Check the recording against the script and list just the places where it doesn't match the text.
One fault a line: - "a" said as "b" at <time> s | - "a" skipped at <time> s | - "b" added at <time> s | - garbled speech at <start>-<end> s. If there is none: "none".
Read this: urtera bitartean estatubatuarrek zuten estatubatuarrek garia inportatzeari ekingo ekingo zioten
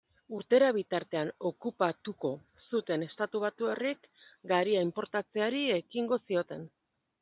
- "estatubatuarrek" said as "okupatuko" at 1.5 s
- "ekingo" skipped at 6.2 s